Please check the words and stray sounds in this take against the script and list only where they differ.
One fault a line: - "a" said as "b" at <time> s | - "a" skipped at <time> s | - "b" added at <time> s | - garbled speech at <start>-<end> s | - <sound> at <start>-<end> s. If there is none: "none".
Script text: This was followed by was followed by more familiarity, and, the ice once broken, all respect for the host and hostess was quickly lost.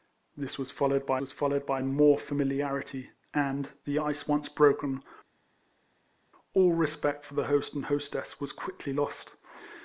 none